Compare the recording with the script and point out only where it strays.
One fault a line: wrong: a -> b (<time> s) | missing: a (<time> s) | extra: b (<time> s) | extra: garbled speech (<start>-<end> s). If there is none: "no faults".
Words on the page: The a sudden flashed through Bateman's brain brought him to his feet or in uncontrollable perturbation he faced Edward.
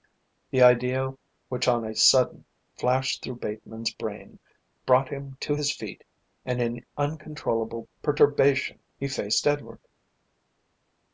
extra: idea which on (0.6 s)
wrong: or -> and (6.4 s)